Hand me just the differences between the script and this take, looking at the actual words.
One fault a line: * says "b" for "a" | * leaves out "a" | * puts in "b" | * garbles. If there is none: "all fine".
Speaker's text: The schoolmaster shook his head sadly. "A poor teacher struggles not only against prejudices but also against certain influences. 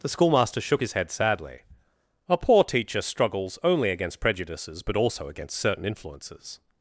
* leaves out "not"